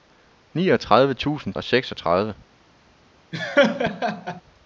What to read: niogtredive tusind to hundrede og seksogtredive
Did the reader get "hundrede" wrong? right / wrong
wrong